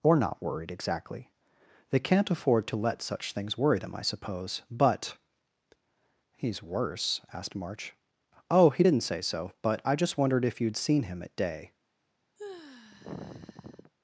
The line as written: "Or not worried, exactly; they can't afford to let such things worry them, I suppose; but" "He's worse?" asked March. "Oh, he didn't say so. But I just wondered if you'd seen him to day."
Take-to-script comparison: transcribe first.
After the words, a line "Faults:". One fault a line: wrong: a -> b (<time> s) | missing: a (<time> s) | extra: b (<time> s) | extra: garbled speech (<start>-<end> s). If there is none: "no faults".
"Or not worried, exactly; they can't afford to let such things worry them, I suppose; but" "He's worse?" asked March. "Oh, he didn't say so. But I just wondered if you'd seen him at day."
Faults:
wrong: to -> at (11.2 s)